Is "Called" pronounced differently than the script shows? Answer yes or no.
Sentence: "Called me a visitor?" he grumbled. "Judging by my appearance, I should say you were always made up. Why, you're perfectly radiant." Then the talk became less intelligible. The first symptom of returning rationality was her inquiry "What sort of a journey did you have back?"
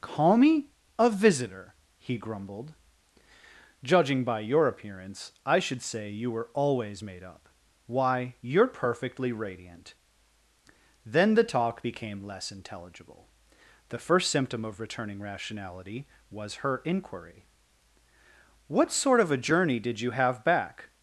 yes